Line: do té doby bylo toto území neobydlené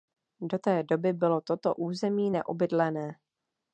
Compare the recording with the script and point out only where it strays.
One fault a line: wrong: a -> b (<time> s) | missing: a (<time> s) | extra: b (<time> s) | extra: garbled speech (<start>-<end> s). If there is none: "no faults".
no faults